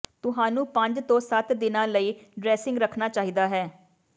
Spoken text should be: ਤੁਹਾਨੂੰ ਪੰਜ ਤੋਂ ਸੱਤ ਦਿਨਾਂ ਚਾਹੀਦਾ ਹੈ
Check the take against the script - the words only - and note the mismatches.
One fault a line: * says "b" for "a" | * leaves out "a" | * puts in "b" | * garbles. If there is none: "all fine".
* puts in "ਲਈ ਡਰੈਸਿੰਗ ਰੱਖਣਾ"